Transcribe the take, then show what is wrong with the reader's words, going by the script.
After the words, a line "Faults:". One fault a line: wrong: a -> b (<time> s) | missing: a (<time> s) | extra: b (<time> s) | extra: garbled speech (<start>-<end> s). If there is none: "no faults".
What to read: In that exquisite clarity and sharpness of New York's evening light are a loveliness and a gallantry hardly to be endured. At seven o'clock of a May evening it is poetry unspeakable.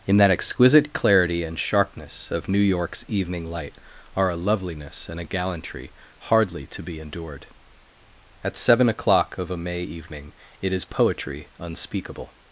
In that exquisite clarity and sharpness of New York's evening light are a loveliness and a gallantry hardly to be endured. At seven o'clock of a May evening it is poetry unspeakable.
Faults:
no faults